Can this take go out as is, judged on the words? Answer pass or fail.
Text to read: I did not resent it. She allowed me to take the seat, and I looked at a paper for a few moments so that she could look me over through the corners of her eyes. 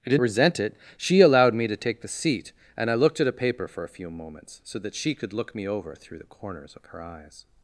fail